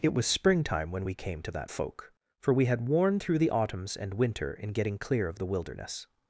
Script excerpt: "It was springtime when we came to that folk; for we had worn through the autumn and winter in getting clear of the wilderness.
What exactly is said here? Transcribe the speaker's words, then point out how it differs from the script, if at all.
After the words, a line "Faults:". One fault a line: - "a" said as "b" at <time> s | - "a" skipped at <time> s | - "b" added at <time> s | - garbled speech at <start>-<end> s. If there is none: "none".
"It was springtime when we came to that folk; for we had worn through the autumns and winter in getting clear of the wilderness.
Faults:
- "autumn" said as "autumns" at 3.5 s